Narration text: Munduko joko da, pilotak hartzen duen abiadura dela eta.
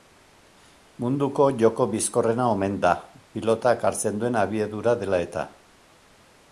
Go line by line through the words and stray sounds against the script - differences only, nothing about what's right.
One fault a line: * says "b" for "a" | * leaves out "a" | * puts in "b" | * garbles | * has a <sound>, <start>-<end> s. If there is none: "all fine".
* puts in "bizkorrena omen"